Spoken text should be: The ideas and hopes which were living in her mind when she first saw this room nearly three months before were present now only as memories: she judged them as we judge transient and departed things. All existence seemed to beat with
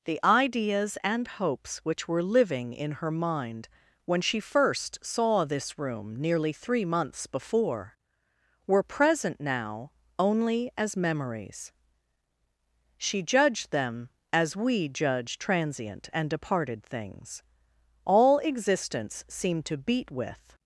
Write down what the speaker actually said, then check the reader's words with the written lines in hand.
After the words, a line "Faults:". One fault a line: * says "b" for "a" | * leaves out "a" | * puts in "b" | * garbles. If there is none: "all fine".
The ideas and hopes which were living in her mind when she first saw this room nearly three months before were present now only as memories: she judged them as we judge transient and departed things. All existence seemed to beat with
Faults:
all fine